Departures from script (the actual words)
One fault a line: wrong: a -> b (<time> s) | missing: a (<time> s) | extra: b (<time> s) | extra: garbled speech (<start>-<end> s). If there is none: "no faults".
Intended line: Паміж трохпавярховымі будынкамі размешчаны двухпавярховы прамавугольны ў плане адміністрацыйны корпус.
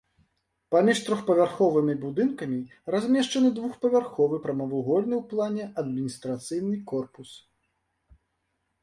no faults